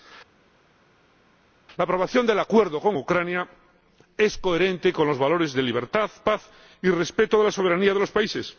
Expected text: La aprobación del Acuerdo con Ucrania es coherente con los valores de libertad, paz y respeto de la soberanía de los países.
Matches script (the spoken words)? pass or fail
pass